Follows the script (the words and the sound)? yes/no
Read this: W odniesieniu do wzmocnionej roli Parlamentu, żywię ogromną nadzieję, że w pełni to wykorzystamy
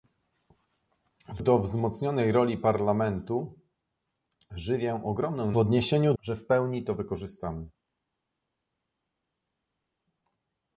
no